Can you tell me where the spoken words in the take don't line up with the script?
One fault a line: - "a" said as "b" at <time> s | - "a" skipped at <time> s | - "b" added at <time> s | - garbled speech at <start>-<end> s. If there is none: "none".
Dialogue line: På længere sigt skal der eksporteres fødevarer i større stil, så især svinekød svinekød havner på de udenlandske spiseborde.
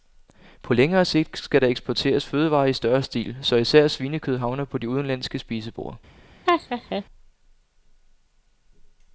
- "svinekød" skipped at 4.4 s